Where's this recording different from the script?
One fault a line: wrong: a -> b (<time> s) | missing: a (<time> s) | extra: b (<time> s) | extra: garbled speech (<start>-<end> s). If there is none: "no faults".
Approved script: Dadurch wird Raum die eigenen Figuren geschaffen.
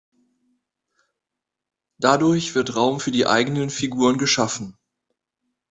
extra: für (3.0 s)